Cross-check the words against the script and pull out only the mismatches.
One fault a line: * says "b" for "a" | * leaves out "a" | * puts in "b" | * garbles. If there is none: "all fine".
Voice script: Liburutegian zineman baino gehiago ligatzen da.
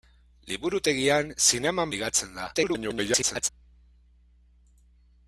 * leaves out "baino gehiago"
* garbles